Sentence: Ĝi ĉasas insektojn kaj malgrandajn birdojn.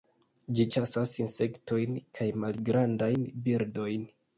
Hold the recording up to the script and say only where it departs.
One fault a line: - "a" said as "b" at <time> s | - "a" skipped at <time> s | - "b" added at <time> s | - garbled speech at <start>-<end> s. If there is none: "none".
none